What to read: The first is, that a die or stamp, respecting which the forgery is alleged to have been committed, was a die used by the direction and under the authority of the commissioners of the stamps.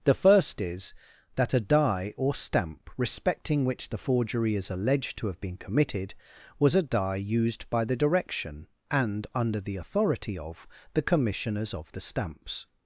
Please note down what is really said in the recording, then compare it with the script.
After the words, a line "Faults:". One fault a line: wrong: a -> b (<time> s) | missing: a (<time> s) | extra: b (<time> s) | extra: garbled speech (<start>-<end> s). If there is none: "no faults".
The first is, that a die or stamp, respecting which the forgery is alleged to have been committed, was a die used by the direction and under the authority of the commissioners of the stamps.
Faults:
no faults